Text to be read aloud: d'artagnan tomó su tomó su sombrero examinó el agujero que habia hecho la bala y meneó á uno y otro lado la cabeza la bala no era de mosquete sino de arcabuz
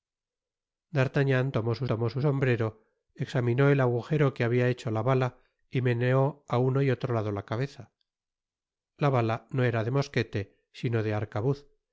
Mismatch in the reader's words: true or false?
false